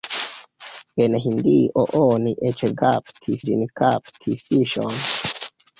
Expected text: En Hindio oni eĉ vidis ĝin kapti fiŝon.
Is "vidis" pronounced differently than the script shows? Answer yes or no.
yes